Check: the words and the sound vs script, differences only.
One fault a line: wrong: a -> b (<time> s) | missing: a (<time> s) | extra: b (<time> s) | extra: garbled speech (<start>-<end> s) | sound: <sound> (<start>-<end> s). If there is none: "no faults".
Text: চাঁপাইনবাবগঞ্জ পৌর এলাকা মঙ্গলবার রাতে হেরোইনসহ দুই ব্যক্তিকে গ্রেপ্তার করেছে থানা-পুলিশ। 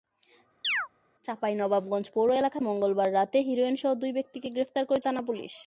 sound: chirp (0.6-0.9 s)